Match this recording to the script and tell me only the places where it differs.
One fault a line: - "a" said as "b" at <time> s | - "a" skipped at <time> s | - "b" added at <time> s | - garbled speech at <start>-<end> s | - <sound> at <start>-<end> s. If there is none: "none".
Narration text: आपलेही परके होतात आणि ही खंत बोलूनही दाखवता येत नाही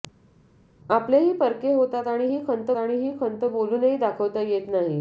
- "आणि ही खंत" added at 2.8 s